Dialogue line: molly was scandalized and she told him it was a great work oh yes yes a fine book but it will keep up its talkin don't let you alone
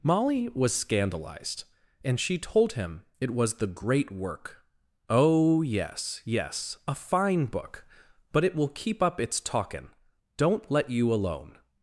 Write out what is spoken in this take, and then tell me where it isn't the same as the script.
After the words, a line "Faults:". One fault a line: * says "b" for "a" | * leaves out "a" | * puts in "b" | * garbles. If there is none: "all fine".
molly was scandalized and she told him it was the great work oh yes yes a fine book but it will keep up its talkin don't let you alone
Faults:
* says "the" for "a"